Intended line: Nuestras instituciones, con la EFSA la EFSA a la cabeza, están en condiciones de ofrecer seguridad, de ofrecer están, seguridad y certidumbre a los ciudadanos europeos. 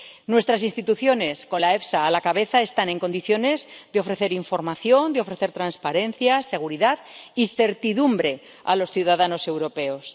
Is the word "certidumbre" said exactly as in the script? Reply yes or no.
yes